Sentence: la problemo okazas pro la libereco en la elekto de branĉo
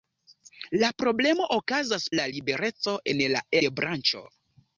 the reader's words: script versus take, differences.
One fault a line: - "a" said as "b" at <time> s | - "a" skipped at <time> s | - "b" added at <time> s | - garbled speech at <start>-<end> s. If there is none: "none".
- "pro" skipped at 2.1 s
- "elekto" skipped at 3.5 s